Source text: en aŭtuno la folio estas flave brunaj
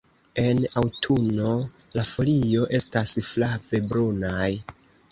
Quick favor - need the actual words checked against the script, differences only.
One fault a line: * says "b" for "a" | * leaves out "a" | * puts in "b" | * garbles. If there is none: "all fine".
all fine